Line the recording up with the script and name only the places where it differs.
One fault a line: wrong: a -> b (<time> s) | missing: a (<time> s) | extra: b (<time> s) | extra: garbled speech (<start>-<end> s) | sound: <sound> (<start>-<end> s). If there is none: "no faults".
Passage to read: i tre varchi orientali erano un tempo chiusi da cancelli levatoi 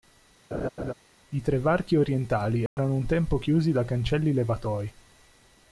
sound: laugh (0.5-0.9 s)
sound: dropout (2.7-2.8 s)